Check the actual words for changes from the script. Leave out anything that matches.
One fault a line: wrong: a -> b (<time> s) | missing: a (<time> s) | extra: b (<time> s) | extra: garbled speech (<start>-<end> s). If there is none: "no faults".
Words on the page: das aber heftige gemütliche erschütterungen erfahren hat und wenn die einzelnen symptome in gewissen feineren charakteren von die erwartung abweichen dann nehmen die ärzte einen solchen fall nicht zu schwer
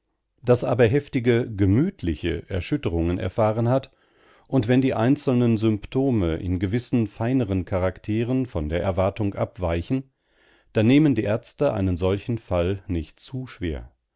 wrong: die -> der (8.7 s)